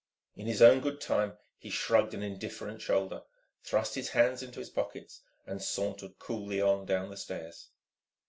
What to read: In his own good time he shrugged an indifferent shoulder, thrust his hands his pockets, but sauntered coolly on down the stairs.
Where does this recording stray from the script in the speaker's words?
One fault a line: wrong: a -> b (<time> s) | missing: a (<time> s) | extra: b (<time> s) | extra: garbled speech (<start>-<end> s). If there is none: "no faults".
extra: into (4.4 s)
wrong: but -> and (5.4 s)